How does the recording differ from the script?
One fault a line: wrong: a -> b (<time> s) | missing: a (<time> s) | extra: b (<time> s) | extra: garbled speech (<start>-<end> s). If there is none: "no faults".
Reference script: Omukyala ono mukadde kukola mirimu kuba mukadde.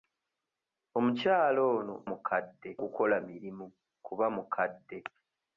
no faults